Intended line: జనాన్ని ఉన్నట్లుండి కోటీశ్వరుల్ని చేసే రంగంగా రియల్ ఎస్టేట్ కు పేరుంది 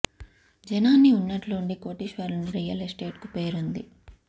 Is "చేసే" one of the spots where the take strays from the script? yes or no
yes